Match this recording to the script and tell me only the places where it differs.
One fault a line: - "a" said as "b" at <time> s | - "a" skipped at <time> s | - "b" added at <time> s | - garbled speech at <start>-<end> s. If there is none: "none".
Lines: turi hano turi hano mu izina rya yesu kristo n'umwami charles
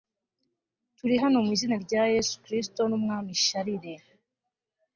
- "turi hano" skipped at 1.4 s